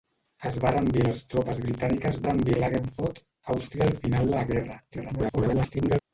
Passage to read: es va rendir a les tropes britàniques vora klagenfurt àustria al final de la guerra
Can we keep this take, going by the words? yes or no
no